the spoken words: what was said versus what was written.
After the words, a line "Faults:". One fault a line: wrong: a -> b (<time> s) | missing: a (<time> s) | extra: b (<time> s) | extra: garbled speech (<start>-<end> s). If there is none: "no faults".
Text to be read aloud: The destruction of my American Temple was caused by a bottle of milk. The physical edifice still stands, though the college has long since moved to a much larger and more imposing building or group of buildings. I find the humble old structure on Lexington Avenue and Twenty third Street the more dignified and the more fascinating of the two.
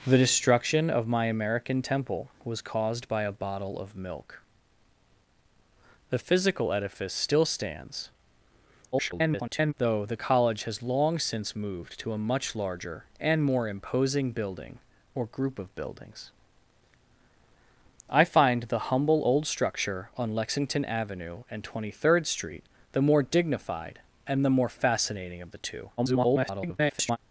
The destruction of my American Temple was caused by a bottle of milk. The physical edifice still stands, [garbled] though the college has long since moved to a much larger and more imposing building or group of buildings. I find the humble old structure on Lexington Avenue and Twenty third Street the more dignified and the more fascinating of the two. [garbled]
Faults:
extra: garbled speech (8.9-9.7 s)
extra: garbled speech (26.0-27.2 s)